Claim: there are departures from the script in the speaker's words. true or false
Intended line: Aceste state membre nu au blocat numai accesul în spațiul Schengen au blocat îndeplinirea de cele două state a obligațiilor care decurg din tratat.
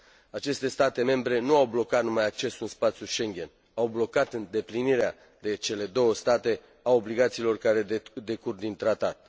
false